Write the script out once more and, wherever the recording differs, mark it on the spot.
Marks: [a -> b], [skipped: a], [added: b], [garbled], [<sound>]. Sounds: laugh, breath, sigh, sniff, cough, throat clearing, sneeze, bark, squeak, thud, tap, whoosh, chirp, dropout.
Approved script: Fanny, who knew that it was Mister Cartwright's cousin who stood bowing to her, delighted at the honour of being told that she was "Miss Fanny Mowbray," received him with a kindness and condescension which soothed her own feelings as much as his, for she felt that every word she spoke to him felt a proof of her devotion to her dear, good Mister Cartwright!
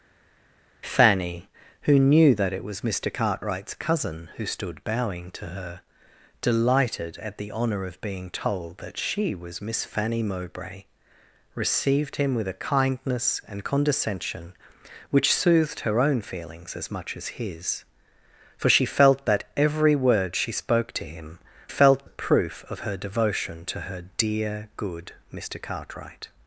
Fanny, who knew that it was Mister Cartwright's cousin who stood bowing to her, delighted at the honour of being told that she was "Miss Fanny Mowbray," received him with a kindness and condescension which soothed her own feelings as much as his, for she felt that every word she spoke to him felt a proof of her devotion to her dear, good Mister Cartwright!